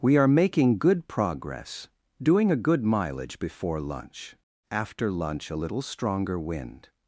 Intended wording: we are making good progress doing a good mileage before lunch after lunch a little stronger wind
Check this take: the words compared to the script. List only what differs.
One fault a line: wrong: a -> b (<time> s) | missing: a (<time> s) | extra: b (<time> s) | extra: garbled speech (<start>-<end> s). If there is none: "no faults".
no faults